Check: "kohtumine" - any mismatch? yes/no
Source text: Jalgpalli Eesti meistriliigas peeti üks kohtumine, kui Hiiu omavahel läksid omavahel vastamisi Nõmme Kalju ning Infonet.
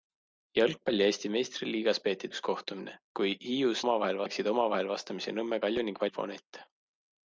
no